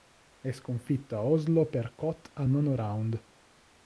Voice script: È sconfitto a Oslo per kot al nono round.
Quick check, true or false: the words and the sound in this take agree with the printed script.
true